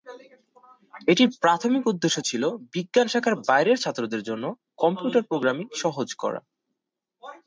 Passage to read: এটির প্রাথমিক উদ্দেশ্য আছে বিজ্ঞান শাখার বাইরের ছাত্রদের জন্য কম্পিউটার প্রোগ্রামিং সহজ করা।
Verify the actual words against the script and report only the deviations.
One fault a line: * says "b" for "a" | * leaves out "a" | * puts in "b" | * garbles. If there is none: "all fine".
* says "ছিল" for "আছে"